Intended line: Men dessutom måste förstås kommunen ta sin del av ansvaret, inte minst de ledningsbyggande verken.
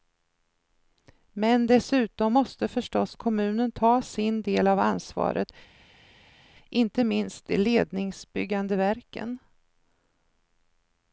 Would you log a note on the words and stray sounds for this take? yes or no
no